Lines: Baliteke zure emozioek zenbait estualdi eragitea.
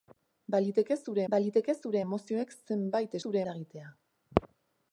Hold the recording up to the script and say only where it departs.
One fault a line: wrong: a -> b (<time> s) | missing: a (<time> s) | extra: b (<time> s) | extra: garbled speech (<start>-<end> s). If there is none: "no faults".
extra: baliteke zure (1.3 s)
wrong: estualdi -> zure (3.2 s)